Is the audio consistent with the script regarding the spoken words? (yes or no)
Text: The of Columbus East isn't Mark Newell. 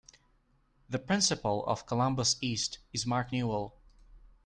no